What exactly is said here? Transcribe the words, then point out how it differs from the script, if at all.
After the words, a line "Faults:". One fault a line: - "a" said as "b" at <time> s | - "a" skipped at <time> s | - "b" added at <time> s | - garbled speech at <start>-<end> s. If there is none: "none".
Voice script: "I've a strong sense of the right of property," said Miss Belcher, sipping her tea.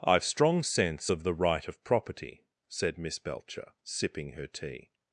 "I've strong sense of the right of property," said Miss Belcher, sipping her tea.
Faults:
- "a" skipped at 0.2 s